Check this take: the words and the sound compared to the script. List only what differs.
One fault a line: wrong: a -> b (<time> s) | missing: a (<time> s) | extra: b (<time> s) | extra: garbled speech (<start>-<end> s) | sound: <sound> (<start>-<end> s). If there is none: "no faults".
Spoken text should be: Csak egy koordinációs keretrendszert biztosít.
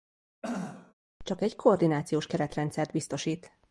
sound: throat clearing (0.4-0.9 s)